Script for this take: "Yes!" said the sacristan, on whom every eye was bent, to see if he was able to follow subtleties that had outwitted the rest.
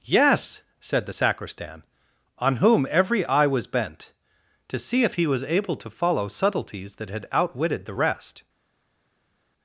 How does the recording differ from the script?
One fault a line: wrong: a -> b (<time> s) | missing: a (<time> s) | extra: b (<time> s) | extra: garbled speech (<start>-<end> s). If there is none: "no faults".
no faults